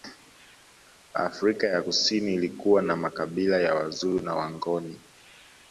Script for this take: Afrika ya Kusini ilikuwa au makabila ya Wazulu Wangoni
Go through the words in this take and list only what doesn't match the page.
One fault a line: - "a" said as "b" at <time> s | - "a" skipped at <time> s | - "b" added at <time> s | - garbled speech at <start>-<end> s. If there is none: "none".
- "au" said as "na" at 2.8 s
- "na" added at 4.2 s